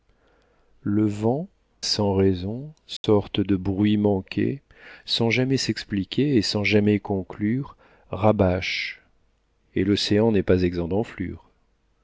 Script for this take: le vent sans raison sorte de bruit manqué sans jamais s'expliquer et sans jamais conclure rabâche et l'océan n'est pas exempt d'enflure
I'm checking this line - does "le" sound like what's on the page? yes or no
yes